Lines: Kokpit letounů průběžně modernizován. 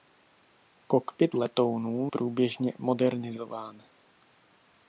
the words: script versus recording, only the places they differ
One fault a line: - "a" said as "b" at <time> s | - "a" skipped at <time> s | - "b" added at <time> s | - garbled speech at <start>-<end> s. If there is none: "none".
none